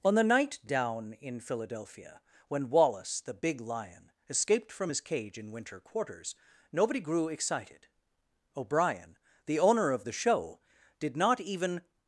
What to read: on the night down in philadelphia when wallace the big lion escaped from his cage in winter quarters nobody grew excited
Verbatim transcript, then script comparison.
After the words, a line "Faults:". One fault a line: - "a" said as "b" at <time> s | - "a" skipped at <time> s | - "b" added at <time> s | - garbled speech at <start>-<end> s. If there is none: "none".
on the night down in philadelphia when wallace the big lion escaped from his cage in winter quarters nobody grew excited o'brien the owner of the show did not even
Faults:
- "o'brien the owner of the show did not even" added at 8.5 s